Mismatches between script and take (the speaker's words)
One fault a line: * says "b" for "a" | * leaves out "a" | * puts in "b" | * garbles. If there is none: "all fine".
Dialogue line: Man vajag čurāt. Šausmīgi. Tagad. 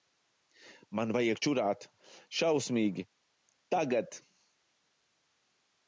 all fine